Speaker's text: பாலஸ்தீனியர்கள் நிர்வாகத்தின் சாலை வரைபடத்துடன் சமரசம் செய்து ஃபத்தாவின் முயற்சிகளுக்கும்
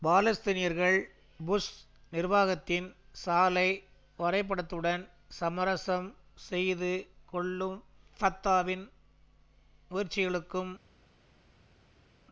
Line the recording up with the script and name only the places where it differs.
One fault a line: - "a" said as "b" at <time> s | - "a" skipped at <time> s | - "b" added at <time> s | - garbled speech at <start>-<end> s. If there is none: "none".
- "புஷ்" added at 1.4 s
- "கொள்ளும்" added at 7.2 s